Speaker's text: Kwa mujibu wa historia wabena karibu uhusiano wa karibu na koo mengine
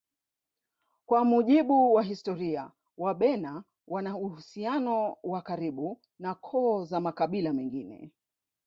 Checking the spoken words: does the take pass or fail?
fail